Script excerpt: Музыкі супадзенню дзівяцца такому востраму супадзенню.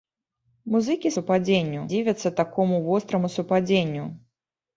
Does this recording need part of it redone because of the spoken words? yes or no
no